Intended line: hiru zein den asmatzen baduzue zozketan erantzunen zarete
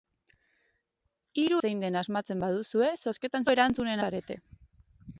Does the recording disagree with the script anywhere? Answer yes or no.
no